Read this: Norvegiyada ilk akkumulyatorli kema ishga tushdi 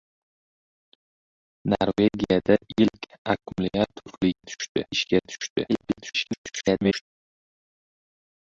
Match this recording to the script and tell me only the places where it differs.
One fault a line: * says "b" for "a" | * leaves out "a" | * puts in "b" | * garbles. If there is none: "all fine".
* says "tushdi" for "kema"
* garbles